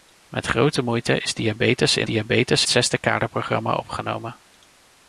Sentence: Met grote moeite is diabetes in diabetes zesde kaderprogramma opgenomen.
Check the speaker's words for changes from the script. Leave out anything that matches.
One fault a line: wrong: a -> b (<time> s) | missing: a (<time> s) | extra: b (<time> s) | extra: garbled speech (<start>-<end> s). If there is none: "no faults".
no faults